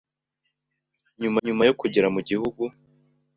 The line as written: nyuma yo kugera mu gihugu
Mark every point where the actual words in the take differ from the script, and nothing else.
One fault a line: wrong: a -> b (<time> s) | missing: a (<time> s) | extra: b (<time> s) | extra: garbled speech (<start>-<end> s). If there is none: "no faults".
extra: nyuma (1.4 s)